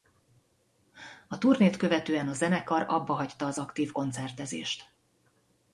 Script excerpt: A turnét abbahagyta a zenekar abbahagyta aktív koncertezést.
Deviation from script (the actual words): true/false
true